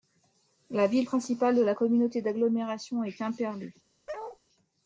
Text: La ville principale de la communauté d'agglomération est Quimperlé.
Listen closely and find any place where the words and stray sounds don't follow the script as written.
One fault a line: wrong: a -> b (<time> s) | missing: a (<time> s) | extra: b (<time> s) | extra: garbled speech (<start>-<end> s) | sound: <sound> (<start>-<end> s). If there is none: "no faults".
sound: bark (4.1-4.4 s)